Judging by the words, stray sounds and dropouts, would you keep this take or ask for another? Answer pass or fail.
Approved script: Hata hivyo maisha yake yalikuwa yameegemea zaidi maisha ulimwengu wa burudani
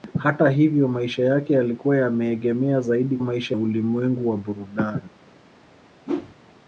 fail